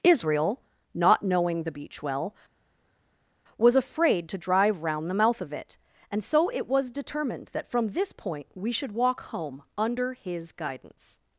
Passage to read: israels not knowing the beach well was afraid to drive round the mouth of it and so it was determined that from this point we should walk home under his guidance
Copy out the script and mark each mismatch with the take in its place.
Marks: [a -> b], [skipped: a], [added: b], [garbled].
[israels -> israel] not knowing the beach well was afraid to drive round the mouth of it and so it was determined that from this point we should walk home under his guidance